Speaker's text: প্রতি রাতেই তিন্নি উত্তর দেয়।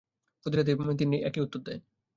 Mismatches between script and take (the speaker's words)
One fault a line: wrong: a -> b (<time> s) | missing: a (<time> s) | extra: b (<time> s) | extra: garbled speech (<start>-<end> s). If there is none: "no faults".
extra: একই (1.2 s)